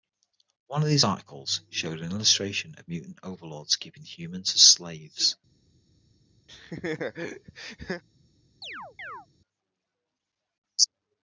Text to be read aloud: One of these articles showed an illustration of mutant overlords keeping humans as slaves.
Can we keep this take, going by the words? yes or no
yes